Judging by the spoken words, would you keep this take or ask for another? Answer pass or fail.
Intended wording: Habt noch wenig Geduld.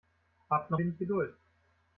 pass